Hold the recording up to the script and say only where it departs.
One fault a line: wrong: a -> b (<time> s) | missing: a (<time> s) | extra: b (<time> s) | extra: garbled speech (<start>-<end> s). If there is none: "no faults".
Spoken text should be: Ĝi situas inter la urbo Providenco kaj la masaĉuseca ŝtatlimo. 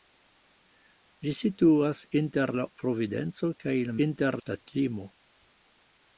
missing: urbo (2.7 s)
wrong: masaĉuseca -> inter (4.1 s)